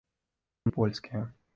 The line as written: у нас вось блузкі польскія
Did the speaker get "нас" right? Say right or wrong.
wrong